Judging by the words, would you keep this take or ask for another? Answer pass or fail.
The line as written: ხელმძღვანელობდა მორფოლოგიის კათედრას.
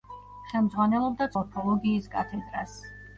pass